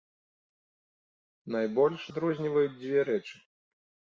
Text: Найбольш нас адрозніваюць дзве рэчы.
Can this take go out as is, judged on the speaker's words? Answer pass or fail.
fail